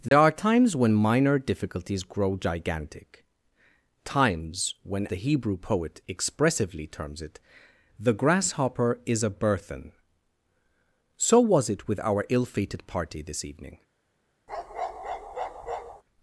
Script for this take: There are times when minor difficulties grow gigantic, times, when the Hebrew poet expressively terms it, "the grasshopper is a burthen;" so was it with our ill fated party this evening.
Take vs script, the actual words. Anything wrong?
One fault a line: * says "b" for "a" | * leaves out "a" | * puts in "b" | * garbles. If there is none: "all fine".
all fine